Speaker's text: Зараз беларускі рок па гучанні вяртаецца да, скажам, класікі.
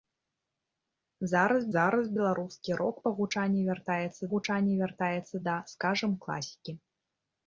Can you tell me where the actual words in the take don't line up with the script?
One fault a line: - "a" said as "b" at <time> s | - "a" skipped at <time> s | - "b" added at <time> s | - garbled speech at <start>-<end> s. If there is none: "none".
- "зараз" added at 1.7 s
- "гучанні вяртаецца" added at 4.3 s